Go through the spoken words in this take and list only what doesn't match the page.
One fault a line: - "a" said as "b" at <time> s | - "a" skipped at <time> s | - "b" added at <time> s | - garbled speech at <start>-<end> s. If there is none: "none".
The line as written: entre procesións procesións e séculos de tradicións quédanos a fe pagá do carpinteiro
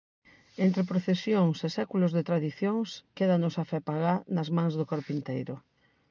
- "procesións" skipped at 1.6 s
- "nas mans" added at 4.4 s